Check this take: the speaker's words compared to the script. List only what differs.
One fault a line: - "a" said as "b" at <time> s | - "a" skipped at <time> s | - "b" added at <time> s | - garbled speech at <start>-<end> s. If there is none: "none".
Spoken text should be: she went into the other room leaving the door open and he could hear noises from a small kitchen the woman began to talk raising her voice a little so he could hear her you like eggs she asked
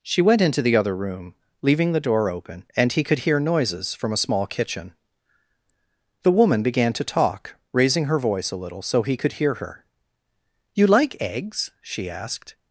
none